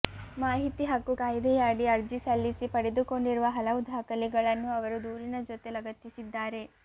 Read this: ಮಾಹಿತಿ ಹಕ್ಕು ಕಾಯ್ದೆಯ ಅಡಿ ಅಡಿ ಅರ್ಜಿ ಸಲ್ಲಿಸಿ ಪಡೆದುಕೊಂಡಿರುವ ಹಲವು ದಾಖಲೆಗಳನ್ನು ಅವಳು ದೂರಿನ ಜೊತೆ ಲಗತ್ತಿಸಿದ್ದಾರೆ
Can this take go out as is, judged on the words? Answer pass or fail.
fail